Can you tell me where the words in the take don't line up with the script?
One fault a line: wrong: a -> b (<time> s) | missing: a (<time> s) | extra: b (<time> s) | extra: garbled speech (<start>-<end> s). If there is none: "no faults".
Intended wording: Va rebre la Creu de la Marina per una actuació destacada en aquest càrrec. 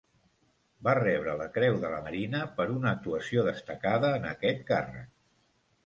no faults